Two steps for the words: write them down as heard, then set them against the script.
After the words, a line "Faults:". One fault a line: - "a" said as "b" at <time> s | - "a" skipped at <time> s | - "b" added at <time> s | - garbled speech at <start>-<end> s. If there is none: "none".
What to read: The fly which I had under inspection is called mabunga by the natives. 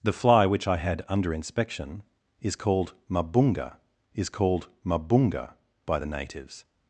The fly which I had under inspection is called mabunga is called mabunga by the natives.
Faults:
- "is called mabunga" added at 4.1 s